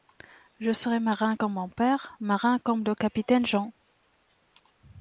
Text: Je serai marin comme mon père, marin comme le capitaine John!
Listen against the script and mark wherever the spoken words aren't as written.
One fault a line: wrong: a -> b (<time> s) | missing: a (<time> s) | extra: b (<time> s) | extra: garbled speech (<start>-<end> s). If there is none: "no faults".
no faults